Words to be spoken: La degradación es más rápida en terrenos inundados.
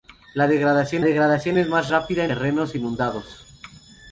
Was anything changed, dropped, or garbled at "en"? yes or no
yes